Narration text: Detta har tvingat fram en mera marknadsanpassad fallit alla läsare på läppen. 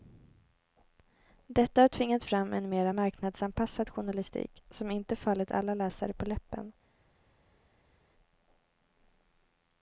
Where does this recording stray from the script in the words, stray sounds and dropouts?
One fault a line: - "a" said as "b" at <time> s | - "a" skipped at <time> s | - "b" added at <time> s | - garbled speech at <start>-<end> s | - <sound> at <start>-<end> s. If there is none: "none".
- "journalistik som inte" added at 3.9 s